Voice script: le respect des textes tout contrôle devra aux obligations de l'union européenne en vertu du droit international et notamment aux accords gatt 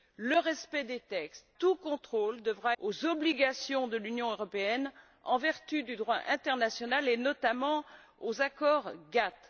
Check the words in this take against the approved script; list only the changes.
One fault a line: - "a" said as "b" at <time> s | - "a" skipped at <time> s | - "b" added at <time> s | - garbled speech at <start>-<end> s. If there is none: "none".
none